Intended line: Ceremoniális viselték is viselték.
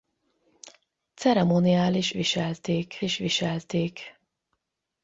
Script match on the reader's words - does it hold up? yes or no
yes